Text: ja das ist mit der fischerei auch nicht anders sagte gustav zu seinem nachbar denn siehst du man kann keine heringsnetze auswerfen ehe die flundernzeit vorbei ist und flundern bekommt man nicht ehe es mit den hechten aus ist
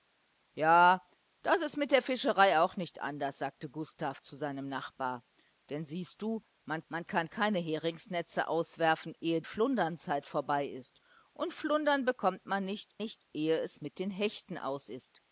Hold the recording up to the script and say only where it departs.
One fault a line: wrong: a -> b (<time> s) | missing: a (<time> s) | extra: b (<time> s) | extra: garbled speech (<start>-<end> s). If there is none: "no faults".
extra: man (6.9 s)
missing: die (9.4 s)
extra: nicht (13.0 s)